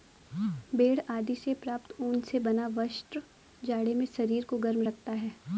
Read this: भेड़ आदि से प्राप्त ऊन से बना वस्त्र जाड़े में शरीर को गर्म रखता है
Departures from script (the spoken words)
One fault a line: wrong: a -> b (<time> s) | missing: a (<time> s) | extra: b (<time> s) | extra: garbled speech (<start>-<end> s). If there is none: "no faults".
no faults